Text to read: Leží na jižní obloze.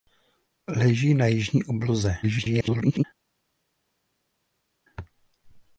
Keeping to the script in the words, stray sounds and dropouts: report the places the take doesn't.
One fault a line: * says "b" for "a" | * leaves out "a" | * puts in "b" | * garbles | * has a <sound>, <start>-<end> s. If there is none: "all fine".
* garbles